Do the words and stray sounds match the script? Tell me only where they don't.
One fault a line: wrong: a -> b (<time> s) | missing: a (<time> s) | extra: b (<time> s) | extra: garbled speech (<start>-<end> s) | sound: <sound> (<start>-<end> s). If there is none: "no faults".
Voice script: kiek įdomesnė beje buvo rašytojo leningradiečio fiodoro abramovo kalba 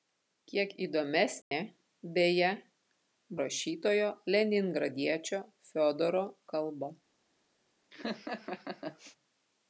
sound: dropout (1.4-1.5 s)
missing: buvo (2.5 s)
missing: abramovo (6.2 s)
sound: laugh (7.9-9.2 s)